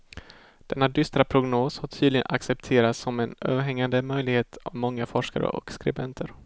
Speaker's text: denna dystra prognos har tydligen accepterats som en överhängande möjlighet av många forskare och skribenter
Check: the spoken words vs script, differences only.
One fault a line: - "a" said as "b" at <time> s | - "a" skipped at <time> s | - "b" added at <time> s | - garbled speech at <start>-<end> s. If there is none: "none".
none